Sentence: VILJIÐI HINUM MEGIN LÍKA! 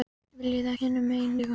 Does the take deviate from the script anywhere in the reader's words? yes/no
no